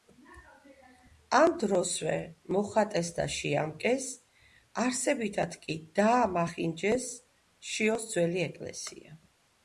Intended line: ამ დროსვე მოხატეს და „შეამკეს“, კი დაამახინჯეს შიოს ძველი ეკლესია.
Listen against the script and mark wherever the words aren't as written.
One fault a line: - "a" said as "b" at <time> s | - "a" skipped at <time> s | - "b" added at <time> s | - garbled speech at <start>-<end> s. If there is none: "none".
- "არსებითად" added at 4.8 s